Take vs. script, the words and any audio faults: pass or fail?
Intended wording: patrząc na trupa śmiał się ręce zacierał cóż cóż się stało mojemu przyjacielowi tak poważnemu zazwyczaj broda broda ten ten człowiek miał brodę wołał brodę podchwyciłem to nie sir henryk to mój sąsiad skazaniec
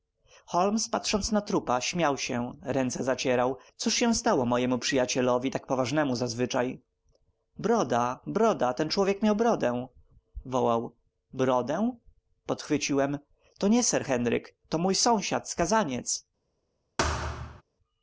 fail